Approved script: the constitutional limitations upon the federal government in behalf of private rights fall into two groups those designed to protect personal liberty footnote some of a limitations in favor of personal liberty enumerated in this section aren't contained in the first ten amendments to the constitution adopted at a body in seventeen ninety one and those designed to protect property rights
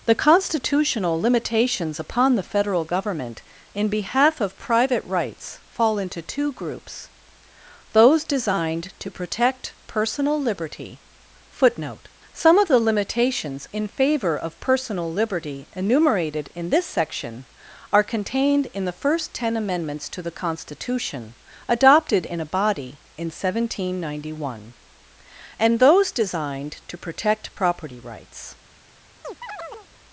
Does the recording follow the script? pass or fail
fail